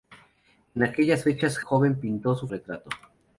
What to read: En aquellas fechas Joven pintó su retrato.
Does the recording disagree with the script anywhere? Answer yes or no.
no